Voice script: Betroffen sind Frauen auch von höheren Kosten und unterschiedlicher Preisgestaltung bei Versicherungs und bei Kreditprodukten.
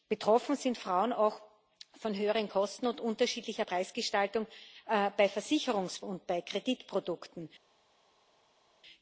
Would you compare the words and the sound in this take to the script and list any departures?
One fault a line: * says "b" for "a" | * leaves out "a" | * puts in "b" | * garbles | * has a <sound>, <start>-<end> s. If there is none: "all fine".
all fine